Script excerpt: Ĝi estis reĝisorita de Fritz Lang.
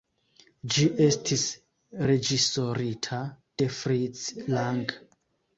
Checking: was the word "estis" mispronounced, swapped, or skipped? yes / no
no